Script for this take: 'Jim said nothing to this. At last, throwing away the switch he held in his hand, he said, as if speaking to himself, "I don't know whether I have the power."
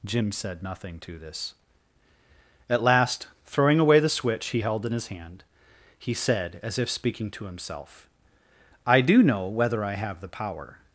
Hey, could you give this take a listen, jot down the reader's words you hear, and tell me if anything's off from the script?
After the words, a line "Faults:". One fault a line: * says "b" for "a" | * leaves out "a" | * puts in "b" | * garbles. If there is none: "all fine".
'Jim said nothing to this. At last, throwing away the switch he held in his hand, he said, as if speaking to himself, "I do know whether I have the power."
Faults:
* says "do" for "don't"